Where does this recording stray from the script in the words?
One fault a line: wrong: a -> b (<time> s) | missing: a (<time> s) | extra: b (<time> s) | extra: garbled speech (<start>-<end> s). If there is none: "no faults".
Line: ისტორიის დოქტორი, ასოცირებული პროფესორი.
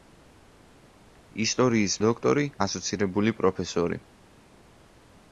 no faults